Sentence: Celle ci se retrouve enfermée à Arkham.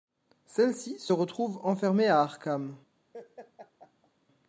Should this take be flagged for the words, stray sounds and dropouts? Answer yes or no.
yes